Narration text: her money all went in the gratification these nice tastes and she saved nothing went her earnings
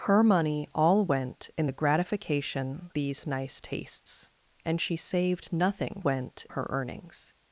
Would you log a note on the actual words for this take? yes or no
no